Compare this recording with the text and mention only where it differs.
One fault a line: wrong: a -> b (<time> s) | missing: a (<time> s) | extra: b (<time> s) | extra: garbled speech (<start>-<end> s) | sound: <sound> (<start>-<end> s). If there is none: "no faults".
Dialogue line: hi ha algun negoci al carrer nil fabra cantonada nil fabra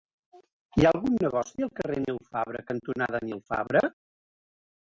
no faults